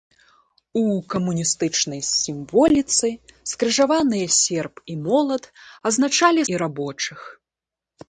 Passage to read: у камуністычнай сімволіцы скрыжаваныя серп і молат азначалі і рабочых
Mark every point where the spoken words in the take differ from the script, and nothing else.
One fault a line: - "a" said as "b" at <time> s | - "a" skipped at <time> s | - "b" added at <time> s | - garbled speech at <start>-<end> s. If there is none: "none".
none